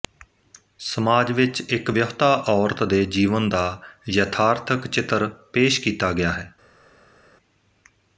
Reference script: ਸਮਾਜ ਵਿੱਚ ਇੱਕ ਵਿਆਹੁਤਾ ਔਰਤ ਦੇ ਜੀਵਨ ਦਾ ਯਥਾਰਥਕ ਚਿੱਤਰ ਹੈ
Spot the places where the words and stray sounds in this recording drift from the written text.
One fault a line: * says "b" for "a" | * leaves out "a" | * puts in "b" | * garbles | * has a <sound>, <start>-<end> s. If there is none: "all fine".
* puts in "ਪੇਸ਼ ਕੀਤਾ ਗਿਆ"